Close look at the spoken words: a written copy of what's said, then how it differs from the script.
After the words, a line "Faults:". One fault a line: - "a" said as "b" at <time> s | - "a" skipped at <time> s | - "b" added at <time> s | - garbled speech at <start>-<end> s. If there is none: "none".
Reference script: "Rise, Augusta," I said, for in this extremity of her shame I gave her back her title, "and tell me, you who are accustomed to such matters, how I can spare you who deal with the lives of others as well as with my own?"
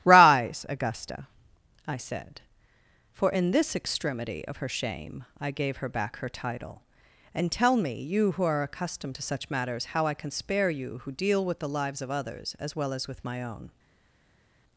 "Rise, Augusta," I said, for in this extremity of her shame I gave her back her title, "and tell me, you who are accustomed to such matters, how I can spare you who deal with the lives of others as well as with my own?"
Faults:
none